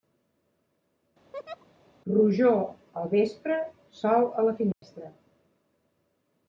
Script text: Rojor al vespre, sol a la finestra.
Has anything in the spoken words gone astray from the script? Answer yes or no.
no